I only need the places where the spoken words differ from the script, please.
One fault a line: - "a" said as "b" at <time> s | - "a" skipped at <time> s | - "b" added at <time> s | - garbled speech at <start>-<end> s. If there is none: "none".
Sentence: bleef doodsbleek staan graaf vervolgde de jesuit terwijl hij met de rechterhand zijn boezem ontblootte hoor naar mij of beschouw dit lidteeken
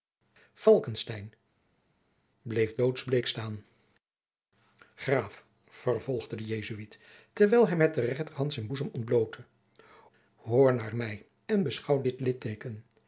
- "of" said as "en" at 11.5 s